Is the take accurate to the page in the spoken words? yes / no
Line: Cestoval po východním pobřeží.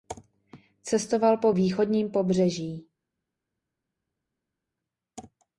yes